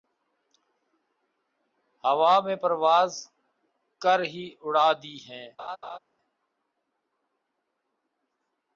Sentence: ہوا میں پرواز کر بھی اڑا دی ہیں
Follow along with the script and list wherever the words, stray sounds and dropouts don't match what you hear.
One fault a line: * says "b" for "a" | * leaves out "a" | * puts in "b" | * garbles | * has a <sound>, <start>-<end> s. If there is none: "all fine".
* says "ہی" for "بھی"
* has a laugh, 5.6-6.0 s